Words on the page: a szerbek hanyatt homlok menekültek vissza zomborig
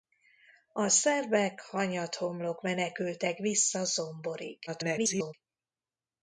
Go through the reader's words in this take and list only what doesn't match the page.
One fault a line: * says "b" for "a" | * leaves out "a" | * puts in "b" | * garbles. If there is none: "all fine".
* garbles